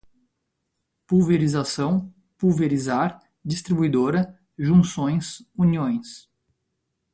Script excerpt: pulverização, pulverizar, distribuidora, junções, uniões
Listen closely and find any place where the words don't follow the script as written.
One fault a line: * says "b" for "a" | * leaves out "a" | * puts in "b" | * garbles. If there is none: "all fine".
all fine